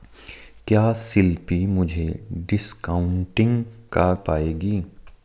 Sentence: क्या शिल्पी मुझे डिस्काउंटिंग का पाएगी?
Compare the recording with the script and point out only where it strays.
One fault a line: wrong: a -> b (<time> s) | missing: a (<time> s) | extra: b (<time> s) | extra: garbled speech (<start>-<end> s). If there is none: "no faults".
no faults